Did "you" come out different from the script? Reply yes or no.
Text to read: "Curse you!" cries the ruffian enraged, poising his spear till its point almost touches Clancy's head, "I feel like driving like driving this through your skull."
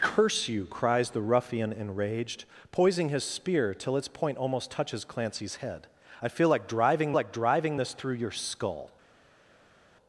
no